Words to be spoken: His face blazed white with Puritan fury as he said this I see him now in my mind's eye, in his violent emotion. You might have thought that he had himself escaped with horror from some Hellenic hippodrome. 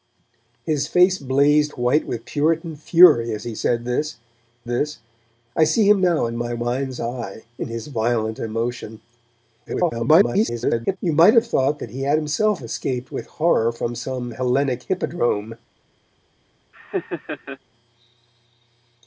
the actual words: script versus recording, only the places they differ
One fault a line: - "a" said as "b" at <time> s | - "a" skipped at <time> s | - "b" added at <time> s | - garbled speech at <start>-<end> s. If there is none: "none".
- "this" added at 4.7 s
- garbled speech at 9.7-11.0 s